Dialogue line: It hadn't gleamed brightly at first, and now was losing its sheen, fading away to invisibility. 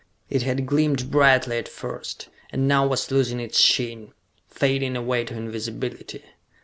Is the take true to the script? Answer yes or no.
no